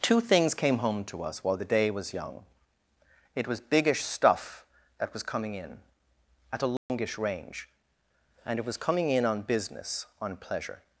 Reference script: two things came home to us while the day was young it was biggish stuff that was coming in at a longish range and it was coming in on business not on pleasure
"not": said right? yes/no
no